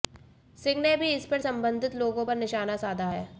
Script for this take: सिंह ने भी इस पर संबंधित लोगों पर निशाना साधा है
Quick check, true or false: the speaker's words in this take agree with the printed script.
true